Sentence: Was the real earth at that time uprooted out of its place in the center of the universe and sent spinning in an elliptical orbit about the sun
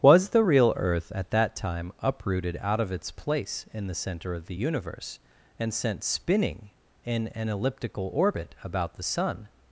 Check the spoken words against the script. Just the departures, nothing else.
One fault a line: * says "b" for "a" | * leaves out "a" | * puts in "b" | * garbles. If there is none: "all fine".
all fine